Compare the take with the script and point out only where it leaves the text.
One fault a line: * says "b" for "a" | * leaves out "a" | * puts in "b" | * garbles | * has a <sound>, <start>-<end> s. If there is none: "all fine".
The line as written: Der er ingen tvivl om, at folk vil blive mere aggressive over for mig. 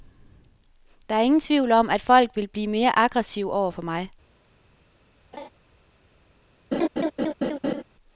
* has a laugh, 5.3-5.5 s
* has a laugh, 6.7-7.8 s